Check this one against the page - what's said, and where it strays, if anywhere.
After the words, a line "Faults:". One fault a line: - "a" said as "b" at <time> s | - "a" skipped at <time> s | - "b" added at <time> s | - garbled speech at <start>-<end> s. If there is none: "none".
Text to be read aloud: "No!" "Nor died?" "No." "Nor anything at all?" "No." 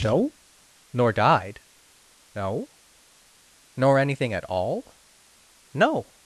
"No!" "Nor died?" "No." "Nor anything at all?" "No."
Faults:
none